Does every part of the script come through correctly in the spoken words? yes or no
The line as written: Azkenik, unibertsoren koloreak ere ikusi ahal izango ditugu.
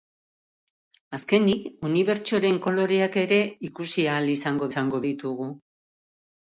no